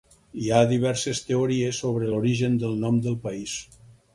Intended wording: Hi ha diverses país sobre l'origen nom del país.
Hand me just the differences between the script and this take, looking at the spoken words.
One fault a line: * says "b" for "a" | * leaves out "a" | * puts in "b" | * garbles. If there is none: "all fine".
* says "teories" for "país"
* puts in "del"